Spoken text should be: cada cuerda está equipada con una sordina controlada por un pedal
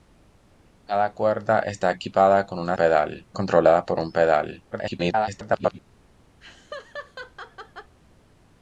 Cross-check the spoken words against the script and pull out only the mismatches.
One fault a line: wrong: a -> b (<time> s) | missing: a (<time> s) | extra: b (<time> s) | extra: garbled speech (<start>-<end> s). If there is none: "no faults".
wrong: sordina -> pedal (2.7 s)
extra: garbled speech (4.7-5.8 s)